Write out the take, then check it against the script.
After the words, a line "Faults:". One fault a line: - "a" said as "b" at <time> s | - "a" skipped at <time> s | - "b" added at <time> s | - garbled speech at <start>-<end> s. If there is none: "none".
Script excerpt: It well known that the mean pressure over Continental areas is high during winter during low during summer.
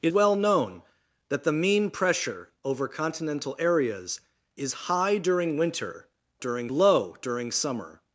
It well known that the mean pressure over Continental areas is high during winter during low during summer.
Faults:
none